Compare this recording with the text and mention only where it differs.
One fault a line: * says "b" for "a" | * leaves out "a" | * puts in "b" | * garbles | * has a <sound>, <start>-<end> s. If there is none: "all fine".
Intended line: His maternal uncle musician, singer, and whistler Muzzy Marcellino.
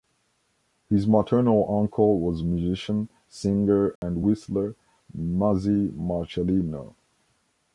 * puts in "was"
* has a dropout, 4.0-4.0 s